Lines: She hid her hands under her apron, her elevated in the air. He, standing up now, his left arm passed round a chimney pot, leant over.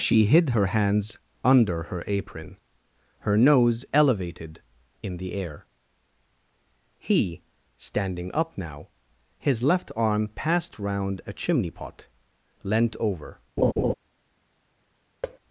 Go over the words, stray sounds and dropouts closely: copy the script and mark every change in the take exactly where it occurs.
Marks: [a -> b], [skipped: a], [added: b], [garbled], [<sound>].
She hid her hands under her apron, her [added: nose] elevated in the air. He, standing up now, his left arm passed round a chimney pot, leant over. [laugh] [thud]